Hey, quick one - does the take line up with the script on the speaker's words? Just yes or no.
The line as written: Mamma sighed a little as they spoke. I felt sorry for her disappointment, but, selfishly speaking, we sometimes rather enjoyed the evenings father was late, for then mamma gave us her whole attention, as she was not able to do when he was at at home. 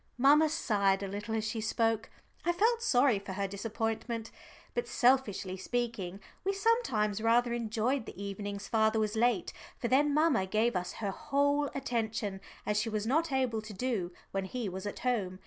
no